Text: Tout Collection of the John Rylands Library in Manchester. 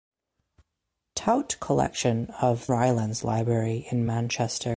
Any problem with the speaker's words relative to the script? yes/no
yes